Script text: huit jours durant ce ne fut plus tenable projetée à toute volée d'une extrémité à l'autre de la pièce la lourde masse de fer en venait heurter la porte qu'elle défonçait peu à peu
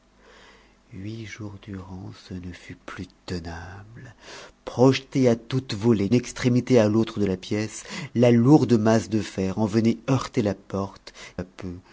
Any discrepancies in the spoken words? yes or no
yes